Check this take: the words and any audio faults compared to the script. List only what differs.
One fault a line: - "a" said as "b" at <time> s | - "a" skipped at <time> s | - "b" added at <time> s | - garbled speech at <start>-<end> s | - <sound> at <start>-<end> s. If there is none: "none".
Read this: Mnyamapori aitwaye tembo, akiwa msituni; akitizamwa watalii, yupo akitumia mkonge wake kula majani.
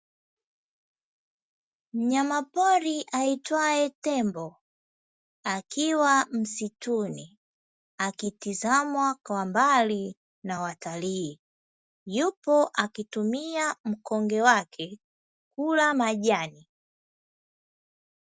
- "kwa mbali na" added at 9.2 s